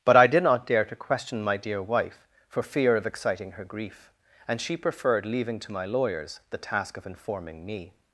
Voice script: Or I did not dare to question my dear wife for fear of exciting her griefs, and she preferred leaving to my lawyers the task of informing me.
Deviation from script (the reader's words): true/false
true